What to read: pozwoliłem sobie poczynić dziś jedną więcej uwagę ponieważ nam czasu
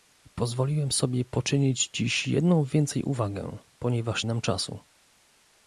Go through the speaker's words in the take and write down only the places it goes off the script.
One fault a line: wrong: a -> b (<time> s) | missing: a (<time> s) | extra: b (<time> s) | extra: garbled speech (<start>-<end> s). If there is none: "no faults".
no faults